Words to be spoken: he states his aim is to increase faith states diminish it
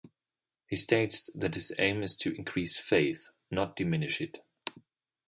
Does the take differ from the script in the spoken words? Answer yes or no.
yes